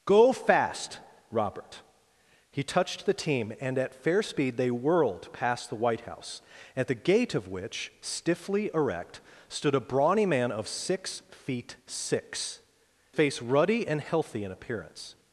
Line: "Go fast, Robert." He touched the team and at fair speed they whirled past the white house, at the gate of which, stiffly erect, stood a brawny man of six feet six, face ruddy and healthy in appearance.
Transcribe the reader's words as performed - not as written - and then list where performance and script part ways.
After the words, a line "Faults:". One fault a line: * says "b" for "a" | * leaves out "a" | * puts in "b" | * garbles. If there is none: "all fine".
"Go fast, Robert." He touched the team and at fair speed they whirled past the white house, at the gate of which, stiffly erect, stood a brawny man of six feet six, face ruddy and healthy in appearance.
Faults:
all fine